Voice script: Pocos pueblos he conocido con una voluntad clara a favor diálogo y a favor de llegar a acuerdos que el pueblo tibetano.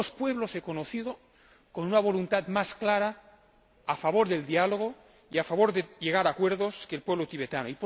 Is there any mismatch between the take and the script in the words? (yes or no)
yes